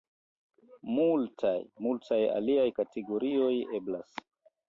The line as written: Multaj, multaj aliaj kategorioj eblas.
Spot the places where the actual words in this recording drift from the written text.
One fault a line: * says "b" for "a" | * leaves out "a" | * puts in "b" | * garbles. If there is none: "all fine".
all fine